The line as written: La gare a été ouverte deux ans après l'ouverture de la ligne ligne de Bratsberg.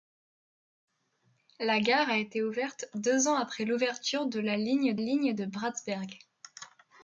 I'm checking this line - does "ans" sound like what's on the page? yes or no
yes